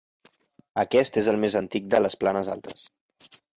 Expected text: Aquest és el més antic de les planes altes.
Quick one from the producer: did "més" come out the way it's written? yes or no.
yes